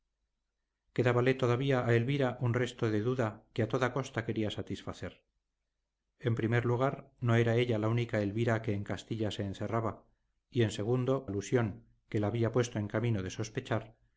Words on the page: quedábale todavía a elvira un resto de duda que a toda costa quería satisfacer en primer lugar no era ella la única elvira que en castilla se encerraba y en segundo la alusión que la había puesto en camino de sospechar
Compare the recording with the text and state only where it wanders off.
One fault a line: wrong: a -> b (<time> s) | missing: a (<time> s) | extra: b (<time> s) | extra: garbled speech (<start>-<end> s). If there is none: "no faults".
missing: la (11.3 s)